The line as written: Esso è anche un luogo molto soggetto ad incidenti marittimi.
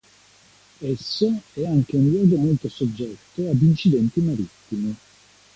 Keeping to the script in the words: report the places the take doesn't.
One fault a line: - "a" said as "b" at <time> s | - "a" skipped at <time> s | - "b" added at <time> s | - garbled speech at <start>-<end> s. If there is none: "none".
none